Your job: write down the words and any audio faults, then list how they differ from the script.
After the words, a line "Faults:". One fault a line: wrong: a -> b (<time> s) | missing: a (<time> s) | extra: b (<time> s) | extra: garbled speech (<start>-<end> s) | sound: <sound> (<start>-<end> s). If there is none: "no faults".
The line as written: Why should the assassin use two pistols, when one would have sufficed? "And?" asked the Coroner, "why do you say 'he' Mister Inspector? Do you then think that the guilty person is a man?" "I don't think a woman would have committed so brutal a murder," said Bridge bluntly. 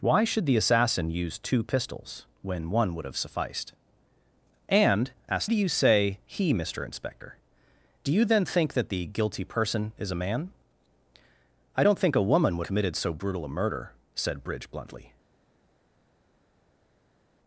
Why should the assassin use two pistols, when one would have sufficed? "And?" asked do you say 'he' Mister Inspector? Do you then think that the guilty person is a man?" "I don't think a woman would committed so brutal a murder," said Bridge bluntly.
Faults:
missing: the Coroner why (5.5 s)
missing: have (12.7 s)